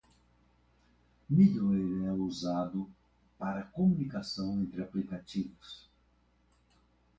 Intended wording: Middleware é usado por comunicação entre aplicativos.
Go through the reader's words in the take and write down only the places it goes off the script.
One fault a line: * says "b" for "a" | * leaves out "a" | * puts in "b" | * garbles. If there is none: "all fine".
* says "para" for "por"